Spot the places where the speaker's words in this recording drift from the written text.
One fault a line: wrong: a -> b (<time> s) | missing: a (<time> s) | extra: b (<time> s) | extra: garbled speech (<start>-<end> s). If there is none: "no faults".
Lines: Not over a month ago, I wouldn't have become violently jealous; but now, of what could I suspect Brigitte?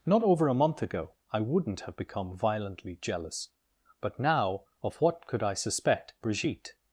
no faults